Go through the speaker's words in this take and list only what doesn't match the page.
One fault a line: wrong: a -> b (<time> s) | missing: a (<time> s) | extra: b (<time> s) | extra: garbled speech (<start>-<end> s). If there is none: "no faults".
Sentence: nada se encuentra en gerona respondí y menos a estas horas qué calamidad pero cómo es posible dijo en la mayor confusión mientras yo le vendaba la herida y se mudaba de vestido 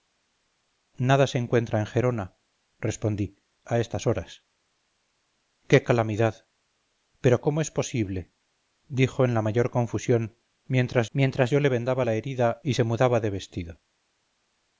missing: y menos (3.4 s)
extra: mientras (11.1 s)